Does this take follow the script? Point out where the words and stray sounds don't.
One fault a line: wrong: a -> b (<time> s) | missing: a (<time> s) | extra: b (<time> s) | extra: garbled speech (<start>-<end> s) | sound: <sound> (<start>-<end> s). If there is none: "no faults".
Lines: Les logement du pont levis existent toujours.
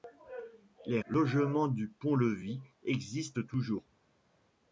no faults